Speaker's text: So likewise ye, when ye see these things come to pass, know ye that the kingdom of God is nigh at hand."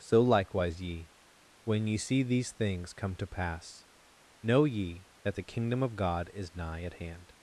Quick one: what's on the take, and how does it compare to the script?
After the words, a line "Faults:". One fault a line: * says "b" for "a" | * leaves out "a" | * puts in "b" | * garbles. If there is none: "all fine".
So likewise ye, when ye see these things come to pass, know ye that the kingdom of God is nigh at hand."
Faults:
all fine